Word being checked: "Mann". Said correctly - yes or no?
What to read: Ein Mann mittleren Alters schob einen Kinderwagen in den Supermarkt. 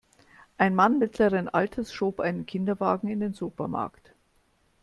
yes